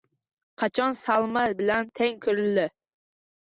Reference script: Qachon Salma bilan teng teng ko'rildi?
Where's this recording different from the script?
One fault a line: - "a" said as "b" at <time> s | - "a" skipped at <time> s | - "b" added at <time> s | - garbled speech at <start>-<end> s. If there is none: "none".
- "teng" skipped at 2.2 s